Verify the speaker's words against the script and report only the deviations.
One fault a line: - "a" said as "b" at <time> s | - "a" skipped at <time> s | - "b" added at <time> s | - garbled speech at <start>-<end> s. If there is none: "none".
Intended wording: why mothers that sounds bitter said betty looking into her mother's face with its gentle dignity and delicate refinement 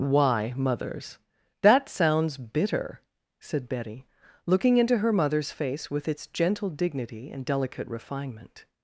none